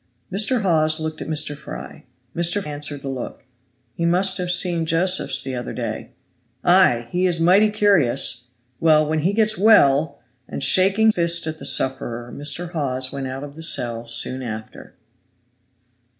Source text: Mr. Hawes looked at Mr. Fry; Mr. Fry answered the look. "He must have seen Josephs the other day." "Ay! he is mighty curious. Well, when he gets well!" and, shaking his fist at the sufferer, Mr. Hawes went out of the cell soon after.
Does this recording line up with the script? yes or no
no